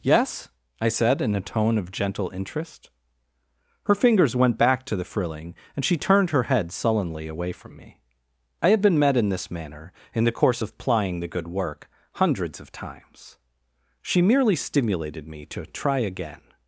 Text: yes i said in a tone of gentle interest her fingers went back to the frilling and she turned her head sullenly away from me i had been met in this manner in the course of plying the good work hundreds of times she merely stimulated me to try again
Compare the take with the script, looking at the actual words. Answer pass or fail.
pass